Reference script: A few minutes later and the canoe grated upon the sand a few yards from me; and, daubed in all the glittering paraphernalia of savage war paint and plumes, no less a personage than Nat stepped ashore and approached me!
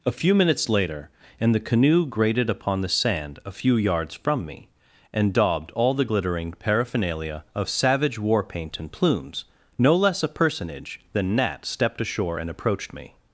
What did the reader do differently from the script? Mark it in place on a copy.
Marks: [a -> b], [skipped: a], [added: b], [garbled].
A few minutes later and the canoe grated upon the sand a few yards from me; and, daubed [skipped: in] all the glittering paraphernalia of savage war paint and plumes, no less a personage than Nat stepped ashore and approached me!